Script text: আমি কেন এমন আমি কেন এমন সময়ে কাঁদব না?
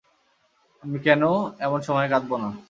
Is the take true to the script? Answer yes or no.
no